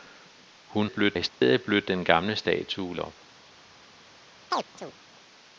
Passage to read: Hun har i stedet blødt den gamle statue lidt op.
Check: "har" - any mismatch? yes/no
yes